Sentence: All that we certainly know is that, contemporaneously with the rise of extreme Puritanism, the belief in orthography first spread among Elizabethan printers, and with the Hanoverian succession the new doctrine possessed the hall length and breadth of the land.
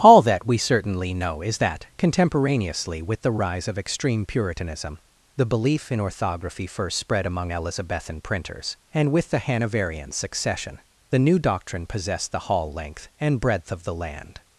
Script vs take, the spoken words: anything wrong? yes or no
no